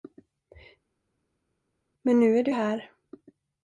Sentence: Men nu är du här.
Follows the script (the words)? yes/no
yes